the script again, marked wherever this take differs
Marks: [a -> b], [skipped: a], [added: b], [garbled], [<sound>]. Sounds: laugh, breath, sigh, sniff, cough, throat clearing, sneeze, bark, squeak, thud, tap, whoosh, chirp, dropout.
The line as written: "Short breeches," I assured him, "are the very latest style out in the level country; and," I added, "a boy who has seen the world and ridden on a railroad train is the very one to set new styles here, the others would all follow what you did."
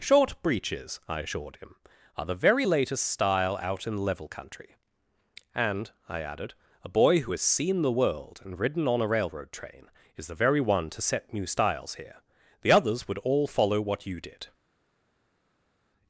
"Short breeches," I assured him, "are the very latest style out in [skipped: the] level country; and," I added, "a boy who has seen the world and ridden on a railroad train is the very one to set new styles here, the others would all follow what you did."